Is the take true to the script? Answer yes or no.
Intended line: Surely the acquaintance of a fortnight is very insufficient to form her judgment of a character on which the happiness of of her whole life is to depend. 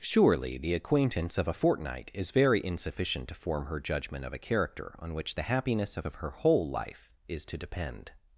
yes